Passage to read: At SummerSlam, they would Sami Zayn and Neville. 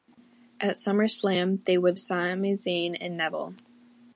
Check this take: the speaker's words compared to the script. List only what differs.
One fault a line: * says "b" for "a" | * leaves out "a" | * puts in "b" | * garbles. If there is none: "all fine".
all fine